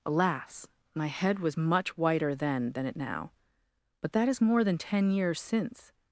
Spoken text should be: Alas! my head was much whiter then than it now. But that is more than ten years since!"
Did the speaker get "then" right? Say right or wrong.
right